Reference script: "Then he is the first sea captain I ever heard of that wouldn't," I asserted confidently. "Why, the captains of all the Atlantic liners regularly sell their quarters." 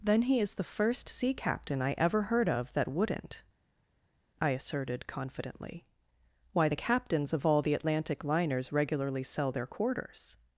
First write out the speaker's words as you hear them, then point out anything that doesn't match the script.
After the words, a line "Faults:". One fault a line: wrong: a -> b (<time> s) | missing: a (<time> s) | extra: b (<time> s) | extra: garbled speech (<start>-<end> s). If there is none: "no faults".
"Then he is the first sea captain I ever heard of that wouldn't," I asserted confidently. "Why, the captains of all the Atlantic liners regularly sell their quarters."
Faults:
no faults